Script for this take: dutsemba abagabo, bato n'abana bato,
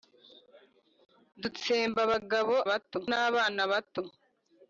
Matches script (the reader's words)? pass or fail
pass